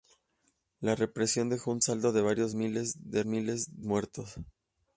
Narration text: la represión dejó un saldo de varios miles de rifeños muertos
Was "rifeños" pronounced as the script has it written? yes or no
no